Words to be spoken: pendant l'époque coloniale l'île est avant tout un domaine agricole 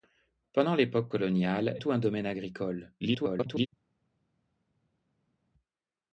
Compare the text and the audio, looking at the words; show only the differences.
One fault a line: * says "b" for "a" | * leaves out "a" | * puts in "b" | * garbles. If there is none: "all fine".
* leaves out "l'île est avant"
* garbles